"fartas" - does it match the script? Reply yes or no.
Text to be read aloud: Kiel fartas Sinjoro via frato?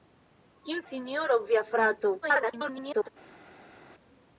no